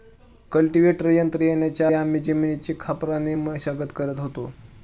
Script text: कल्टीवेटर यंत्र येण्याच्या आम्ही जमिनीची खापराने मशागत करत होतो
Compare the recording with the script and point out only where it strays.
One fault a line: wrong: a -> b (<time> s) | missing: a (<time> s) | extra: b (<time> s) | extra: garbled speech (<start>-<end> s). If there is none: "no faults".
no faults